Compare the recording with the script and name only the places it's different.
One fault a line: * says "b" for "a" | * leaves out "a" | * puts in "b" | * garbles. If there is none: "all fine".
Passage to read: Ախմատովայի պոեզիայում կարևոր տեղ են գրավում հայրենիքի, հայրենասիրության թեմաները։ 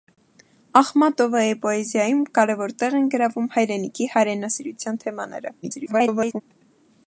* garbles